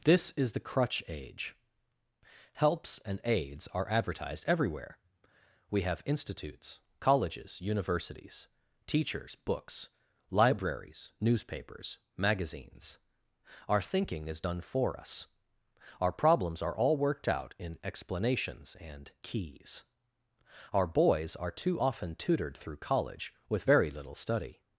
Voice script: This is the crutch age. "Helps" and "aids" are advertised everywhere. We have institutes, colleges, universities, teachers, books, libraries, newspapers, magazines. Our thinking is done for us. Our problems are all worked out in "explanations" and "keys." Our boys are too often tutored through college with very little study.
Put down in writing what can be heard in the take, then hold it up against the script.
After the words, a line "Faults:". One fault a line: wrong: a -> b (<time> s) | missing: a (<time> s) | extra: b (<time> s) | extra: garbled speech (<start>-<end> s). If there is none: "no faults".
This is the crutch age. "Helps" and "aids" are advertised everywhere. We have institutes, colleges, universities, teachers, books, libraries, newspapers, magazines. Our thinking is done for us. Our problems are all worked out in "explanations" and "keys." Our boys are too often tutored through college with very little study.
Faults:
no faults